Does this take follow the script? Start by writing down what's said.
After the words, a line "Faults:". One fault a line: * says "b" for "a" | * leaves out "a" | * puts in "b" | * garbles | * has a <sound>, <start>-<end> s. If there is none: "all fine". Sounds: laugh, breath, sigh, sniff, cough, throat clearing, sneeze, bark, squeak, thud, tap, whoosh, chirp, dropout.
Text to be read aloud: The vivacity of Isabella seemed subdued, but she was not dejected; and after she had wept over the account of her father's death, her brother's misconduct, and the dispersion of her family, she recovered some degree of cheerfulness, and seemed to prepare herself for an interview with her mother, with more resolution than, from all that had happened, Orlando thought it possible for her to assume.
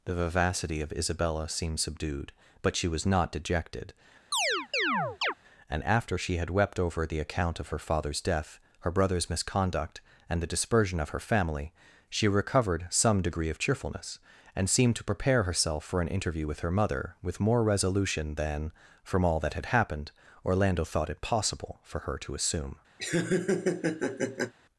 The vivacity of Isabella seemed subdued, but she was not dejected; and after she had wept over the account of her father's death, her brother's misconduct, and the dispersion of her family, she recovered some degree of cheerfulness, and seemed to prepare herself for an interview with her mother, with more resolution than, from all that had happened, Orlando thought it possible for her to assume.
Faults:
* has a chirp, 4.3-5.3 s
* has a laugh, 23.0-24.5 s